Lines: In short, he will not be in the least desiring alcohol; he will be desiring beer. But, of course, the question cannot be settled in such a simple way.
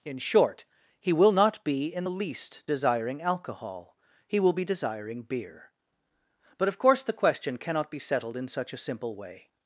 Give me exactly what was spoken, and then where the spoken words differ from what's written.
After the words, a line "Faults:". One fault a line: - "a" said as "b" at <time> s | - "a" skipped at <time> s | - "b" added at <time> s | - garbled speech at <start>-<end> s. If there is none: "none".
In short, he will not be in the least desiring alcohol; he will be desiring beer. But, of course, the question cannot be settled in such a simple way.
Faults:
none